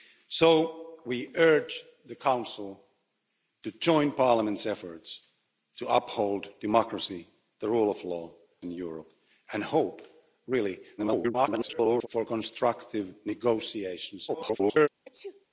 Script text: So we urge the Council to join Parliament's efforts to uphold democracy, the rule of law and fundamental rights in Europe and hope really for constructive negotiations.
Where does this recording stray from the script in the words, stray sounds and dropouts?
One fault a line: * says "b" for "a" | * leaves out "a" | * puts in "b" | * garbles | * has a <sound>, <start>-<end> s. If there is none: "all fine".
* leaves out "and fundamental rights"
* garbles
* garbles
* has a sneeze, 15.0-15.5 s